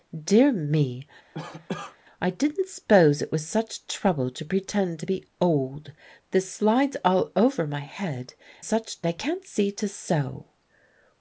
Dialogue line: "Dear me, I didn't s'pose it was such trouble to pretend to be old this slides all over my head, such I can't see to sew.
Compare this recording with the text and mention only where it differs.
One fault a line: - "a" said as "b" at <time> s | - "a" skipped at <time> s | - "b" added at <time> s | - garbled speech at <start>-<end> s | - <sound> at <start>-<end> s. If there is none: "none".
- cough at 1.3-2.0 s